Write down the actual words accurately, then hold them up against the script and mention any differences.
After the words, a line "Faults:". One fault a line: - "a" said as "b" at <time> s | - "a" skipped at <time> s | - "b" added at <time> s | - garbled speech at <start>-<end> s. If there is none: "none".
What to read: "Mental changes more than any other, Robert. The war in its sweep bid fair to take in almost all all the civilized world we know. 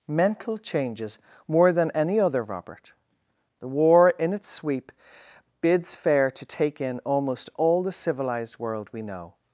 "Mental changes more than any other, Robert. The war in its sweep bids fair to take in almost all the civilized world we know.
Faults:
- "bid" said as "bids" at 5.6 s
- "all" skipped at 7.8 s